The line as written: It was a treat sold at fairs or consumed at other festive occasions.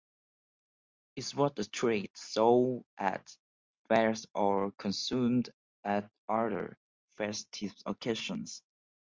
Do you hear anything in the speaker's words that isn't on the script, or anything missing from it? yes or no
no